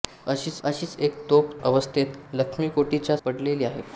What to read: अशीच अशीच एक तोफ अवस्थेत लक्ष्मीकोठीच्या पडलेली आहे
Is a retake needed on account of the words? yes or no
no